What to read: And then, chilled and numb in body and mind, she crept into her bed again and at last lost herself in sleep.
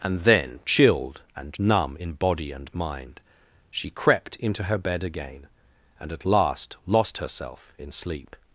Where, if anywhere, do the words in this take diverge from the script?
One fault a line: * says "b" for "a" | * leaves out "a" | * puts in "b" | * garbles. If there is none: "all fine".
all fine